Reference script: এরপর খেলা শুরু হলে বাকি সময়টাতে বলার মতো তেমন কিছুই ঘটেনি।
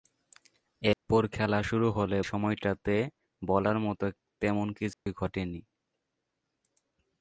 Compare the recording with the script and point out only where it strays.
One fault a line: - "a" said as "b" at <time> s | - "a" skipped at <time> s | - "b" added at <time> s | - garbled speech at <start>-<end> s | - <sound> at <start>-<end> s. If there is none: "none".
- dropout at 0.9-1.1 s
- "বাকি" skipped at 2.2 s
- dropout at 4.9-5.1 s